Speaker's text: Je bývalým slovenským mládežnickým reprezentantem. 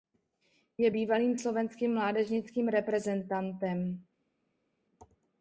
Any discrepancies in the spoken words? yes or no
no